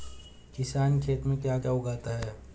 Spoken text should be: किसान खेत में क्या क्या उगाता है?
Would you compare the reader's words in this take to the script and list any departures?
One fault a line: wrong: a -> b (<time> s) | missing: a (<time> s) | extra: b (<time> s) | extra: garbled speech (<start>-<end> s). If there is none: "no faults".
no faults